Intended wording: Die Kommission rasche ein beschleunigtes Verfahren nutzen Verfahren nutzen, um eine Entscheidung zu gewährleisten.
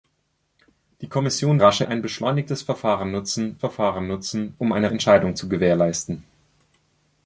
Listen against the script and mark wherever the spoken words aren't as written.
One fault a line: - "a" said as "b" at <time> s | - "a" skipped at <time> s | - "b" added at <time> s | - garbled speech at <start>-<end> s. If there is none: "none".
none